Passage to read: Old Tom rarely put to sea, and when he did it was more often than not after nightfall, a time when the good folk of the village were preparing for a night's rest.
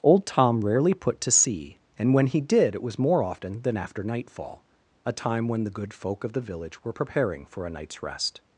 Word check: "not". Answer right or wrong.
wrong